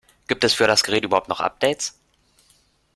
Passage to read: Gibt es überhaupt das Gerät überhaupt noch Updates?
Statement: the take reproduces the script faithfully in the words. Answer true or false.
false